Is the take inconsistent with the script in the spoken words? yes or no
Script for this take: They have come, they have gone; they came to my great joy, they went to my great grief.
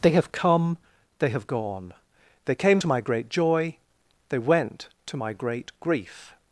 no